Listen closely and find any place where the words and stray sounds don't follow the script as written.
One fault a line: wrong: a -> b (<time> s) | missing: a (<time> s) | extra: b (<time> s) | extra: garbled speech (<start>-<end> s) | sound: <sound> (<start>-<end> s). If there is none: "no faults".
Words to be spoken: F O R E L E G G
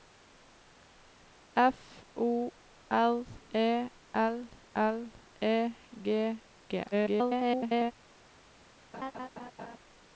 extra: L (4.8 s)
extra: garbled speech (6.9-7.9 s)
sound: laugh (8.9-9.8 s)